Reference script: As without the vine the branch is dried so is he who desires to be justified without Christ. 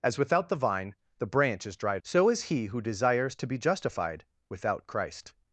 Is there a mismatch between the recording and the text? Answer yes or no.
no